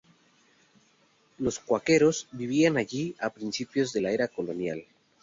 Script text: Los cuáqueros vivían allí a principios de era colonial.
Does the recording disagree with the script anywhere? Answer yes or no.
yes